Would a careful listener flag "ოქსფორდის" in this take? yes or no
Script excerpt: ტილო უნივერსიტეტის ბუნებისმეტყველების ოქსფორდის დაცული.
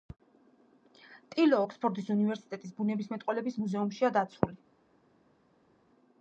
yes